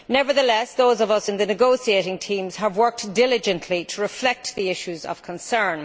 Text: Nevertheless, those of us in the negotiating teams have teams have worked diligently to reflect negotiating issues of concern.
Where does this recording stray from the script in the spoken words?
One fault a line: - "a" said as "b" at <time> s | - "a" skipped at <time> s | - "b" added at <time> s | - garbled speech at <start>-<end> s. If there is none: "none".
- "teams have" skipped at 2.8 s
- "negotiating" said as "the" at 4.5 s